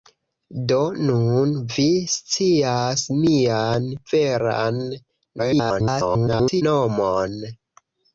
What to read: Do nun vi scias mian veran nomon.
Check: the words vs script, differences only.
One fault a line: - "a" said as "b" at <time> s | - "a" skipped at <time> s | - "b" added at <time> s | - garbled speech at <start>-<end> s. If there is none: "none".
- garbled speech at 5.4-6.6 s